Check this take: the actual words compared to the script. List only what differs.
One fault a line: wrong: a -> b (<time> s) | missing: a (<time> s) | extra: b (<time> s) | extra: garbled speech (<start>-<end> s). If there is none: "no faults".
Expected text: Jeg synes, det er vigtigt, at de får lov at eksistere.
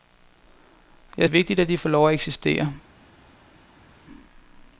missing: synes det (1.3 s)